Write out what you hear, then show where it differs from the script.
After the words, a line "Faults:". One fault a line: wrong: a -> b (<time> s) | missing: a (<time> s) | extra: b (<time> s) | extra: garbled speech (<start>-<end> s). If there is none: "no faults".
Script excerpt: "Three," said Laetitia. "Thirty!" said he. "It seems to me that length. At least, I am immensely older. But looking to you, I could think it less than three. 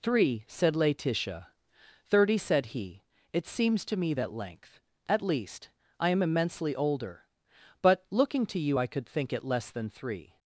"Three," said Laetitia. "Thirty!" said he. "It seems to me that length. At least, I am immensely older. But looking to you, I could think it less than three.
Faults:
no faults